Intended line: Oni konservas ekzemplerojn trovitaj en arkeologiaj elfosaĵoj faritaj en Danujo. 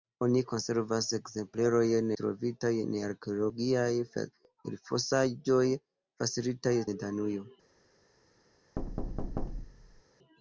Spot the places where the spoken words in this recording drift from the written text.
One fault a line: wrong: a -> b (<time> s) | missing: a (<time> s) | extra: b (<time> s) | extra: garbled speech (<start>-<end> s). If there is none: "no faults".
no faults